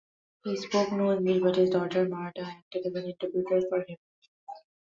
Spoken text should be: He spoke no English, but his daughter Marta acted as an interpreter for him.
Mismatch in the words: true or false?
false